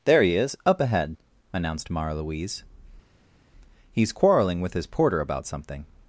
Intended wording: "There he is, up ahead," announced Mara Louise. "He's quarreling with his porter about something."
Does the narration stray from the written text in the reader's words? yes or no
no